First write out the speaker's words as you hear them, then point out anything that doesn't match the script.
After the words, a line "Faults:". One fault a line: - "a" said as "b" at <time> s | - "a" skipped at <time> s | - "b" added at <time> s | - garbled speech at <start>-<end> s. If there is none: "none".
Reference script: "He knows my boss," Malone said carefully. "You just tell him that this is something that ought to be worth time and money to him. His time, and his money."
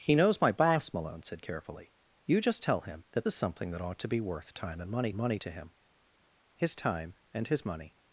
"He knows my boss," Malone said carefully. "You just tell him that is something that ought to be worth time and money money to him. His time, and his money."
Faults:
- "this" skipped at 3.3 s
- "money" added at 5.1 s